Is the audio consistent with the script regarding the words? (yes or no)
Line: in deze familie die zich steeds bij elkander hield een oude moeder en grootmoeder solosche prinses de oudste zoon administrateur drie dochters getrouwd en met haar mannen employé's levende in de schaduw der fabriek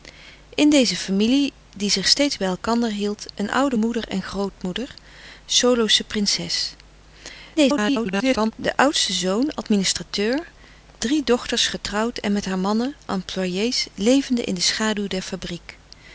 no